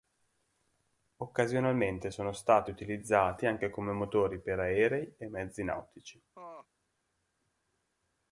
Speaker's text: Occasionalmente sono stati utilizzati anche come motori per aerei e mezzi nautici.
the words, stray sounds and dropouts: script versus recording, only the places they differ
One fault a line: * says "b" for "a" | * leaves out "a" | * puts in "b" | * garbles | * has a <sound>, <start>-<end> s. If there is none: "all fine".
* has a laugh, 6.3-6.7 s